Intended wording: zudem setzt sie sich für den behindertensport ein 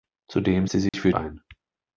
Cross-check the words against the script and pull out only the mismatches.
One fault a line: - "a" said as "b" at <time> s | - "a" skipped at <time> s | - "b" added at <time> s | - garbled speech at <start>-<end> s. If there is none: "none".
- "setzt" skipped at 0.7 s
- "den behindertensport" skipped at 1.1 s